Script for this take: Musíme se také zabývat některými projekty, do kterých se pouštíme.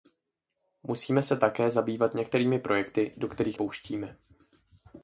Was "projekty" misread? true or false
false